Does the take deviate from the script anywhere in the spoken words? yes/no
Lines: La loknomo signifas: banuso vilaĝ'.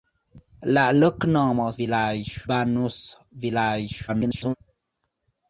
yes